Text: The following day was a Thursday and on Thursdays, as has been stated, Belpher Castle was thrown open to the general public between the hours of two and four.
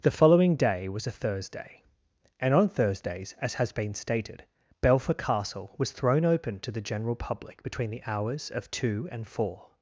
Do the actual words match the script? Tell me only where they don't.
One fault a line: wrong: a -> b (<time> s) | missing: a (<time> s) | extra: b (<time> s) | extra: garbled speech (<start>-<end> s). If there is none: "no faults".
no faults